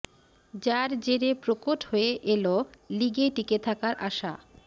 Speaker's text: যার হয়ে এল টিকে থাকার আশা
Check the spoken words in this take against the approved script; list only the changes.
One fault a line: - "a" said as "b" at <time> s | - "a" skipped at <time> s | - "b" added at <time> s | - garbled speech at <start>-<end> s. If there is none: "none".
- "জেরে প্রকট" added at 1.0 s
- "লিগে" added at 3.0 s